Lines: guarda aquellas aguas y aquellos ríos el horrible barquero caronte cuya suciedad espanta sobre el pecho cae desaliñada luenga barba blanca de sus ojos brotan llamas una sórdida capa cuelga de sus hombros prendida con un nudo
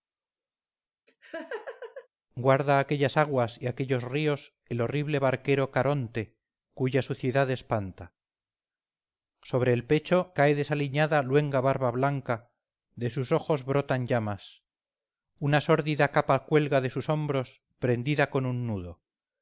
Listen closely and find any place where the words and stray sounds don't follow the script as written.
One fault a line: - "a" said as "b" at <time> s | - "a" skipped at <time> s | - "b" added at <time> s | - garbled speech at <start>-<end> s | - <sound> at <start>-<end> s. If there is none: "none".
- laugh at 1.1-2.1 s